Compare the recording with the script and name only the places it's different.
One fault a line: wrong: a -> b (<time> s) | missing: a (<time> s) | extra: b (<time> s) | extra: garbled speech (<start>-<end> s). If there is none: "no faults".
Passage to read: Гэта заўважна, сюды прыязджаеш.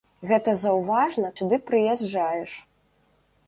no faults